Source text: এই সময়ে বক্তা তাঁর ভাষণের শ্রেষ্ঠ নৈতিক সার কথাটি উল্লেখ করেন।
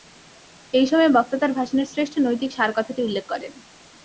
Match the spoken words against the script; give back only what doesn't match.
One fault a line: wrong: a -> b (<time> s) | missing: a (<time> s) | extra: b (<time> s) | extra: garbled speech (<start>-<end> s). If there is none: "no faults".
no faults